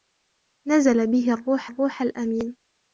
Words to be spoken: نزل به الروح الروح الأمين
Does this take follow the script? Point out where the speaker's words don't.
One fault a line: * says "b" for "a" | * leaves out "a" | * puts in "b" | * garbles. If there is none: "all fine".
all fine